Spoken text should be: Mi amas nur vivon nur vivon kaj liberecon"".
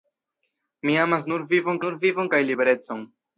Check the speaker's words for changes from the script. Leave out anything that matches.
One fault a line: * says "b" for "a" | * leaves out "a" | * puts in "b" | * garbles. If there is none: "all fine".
all fine